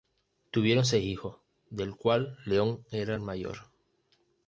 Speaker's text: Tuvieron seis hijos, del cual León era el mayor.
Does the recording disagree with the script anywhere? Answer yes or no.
no